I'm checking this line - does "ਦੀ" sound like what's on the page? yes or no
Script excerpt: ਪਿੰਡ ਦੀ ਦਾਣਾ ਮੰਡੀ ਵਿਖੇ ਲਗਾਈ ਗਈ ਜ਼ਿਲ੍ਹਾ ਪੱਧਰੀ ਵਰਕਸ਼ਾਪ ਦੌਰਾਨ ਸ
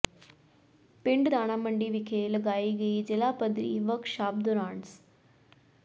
no